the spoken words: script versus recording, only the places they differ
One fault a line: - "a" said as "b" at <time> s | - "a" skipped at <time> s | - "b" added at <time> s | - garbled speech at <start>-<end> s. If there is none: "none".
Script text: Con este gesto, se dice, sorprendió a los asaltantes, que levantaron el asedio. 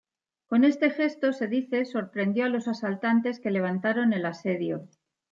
none